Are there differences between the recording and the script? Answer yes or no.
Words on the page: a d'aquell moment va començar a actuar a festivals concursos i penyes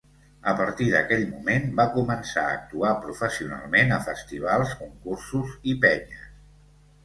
yes